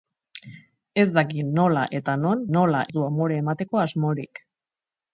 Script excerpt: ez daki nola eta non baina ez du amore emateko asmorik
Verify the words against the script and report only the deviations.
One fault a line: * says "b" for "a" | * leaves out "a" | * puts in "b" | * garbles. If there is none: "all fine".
* says "nola" for "baina"